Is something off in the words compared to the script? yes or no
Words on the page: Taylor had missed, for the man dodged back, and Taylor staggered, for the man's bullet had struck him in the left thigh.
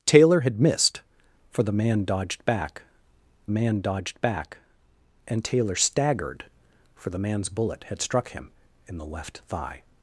yes